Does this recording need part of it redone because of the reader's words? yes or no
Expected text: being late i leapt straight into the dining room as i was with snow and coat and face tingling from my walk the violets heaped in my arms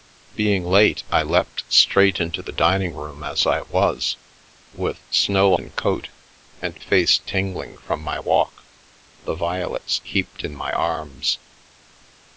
no